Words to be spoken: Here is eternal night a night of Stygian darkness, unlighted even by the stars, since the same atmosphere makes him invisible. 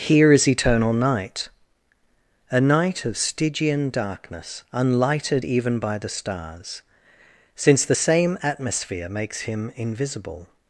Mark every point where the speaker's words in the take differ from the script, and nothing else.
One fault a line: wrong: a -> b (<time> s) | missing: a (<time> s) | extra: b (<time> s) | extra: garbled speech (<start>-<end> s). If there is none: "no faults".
no faults